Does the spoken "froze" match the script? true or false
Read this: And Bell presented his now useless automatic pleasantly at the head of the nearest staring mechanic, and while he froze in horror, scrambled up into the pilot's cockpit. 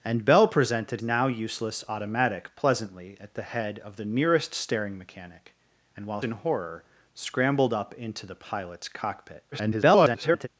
false